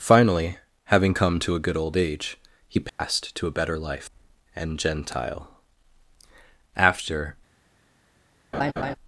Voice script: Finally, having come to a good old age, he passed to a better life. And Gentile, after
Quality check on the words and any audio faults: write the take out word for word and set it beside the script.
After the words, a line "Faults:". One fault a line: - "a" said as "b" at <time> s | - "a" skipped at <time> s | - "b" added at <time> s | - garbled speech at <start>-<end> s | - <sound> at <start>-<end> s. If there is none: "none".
Finally, having come to a good old age, he passed to a better life. And Gentile, after
Faults:
- dropout at 2.9-3.0 s
- laugh at 8.5-9.0 s